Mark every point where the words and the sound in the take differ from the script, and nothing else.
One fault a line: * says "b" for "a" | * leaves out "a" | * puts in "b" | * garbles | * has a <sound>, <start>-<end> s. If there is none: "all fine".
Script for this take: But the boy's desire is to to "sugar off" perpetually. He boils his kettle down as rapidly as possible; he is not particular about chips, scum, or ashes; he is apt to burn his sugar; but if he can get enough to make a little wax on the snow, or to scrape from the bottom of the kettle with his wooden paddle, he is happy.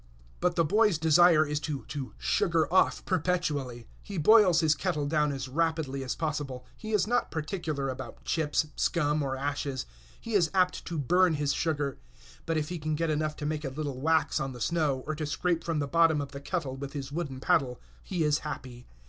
all fine